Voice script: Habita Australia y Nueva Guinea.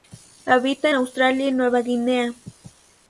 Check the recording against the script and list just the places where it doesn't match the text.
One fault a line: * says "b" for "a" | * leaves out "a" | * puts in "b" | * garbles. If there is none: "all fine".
all fine